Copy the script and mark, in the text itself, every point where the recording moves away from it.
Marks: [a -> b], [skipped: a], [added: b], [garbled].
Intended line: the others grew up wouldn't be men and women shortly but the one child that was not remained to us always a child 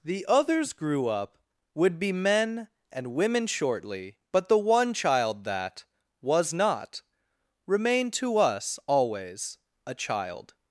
the others grew up [wouldn't -> would] be men and women shortly but the one child that was not remained to us always a child